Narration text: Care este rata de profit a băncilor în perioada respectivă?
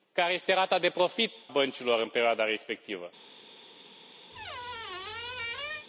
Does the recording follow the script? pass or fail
fail